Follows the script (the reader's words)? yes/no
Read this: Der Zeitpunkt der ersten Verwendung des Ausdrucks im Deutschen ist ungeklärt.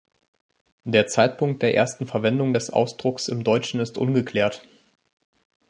yes